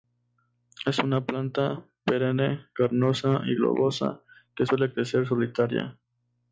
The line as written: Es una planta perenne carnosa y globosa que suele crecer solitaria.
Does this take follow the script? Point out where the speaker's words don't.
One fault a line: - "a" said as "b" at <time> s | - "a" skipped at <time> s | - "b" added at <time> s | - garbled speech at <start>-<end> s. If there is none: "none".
none